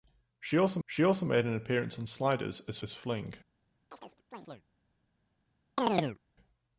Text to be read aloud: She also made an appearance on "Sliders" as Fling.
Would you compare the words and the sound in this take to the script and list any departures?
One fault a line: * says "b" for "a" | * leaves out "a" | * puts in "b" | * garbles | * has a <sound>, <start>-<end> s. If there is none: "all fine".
* puts in "she also"
* puts in "as"
* has a chirp, 3.9-4.6 s
* has a chirp, 5.8-6.2 s